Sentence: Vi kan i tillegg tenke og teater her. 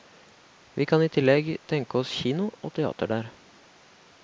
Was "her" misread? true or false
true